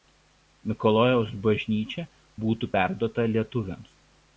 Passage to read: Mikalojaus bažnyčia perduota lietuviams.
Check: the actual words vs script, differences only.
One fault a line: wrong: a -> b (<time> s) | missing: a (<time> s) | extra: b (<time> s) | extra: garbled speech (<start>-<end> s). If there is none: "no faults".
extra: būtų (2.4 s)